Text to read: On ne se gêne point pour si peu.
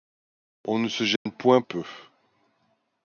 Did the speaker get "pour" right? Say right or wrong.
wrong